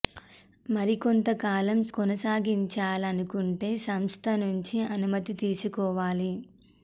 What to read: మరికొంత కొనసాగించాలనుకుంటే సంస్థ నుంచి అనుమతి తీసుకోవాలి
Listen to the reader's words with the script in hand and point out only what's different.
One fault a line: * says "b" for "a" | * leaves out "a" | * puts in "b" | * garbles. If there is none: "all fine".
* puts in "కాలం"